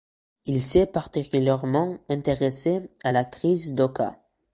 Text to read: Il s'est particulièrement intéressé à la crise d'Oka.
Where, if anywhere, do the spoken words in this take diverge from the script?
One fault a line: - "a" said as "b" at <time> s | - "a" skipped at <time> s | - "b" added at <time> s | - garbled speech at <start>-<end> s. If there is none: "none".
none